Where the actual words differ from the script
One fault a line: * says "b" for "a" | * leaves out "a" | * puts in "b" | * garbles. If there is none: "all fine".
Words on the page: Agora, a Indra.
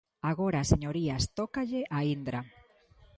* puts in "señorías tócalle"